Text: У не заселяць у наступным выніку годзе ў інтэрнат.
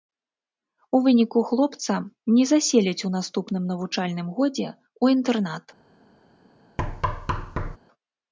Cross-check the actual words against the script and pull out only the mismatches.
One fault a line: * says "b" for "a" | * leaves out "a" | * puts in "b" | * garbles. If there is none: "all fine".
* puts in "выніку хлопца"
* says "навучальным" for "выніку"